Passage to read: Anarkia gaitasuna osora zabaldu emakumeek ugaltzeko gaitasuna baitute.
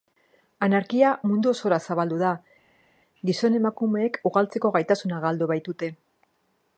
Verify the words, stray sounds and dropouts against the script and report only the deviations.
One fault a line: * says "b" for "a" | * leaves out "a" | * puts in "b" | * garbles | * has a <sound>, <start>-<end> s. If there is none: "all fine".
* says "mundu" for "gaitasuna"
* puts in "da gizon"
* puts in "galdu"